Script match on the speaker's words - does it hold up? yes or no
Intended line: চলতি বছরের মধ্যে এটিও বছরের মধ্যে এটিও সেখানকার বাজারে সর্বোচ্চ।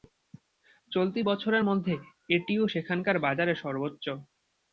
no